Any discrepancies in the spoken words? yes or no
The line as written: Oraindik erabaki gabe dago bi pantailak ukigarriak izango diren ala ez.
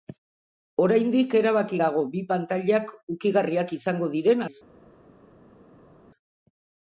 yes